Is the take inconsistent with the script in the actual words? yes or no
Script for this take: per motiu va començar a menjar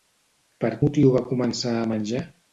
no